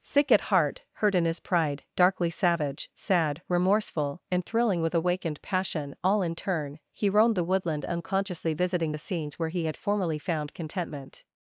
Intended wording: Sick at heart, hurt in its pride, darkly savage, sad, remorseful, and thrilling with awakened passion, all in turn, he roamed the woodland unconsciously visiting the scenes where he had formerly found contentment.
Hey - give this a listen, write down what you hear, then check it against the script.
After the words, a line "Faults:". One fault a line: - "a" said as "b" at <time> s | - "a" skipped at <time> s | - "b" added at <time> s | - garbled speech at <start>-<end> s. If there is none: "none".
Sick at heart, hurt in his pride, darkly savage, sad, remorseful, and thrilling with awakened passion, all in turn, he roamed the woodland unconsciously visiting the scenes where he had formerly found contentment.
Faults:
- "its" said as "his" at 1.2 s